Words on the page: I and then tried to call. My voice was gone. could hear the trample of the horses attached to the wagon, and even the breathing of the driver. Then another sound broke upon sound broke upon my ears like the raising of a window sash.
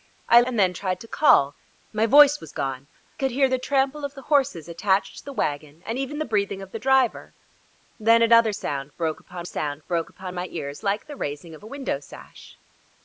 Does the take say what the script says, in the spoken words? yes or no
yes